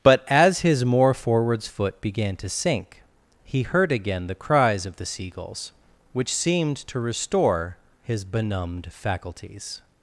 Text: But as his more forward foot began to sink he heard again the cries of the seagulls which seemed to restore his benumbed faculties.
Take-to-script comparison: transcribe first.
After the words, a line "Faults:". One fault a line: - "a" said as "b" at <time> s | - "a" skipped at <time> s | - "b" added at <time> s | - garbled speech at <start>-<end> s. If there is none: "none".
But as his more forwards foot began to sink he heard again the cries of the seagulls which seemed to restore his benumbed faculties.
Faults:
- "forward" said as "forwards" at 1.1 s